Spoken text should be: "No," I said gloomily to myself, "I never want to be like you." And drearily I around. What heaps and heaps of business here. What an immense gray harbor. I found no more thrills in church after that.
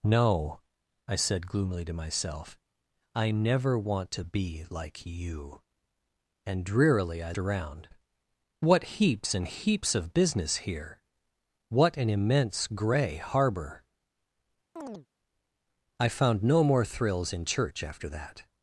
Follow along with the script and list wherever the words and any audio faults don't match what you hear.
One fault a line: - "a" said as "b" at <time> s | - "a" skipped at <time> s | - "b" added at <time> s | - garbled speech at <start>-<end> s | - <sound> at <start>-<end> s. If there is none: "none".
- chirp at 14.8-15.1 s